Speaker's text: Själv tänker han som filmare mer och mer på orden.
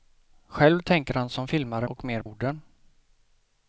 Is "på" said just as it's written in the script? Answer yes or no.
no